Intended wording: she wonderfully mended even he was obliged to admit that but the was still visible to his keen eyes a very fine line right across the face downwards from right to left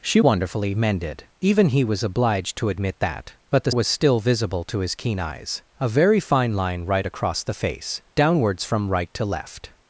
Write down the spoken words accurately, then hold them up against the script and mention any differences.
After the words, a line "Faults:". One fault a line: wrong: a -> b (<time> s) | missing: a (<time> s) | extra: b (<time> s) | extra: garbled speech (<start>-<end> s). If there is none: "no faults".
she wonderfully mended even he was obliged to admit that but the was still visible to his keen eyes a very fine line right across the face downwards from right to left
Faults:
no faults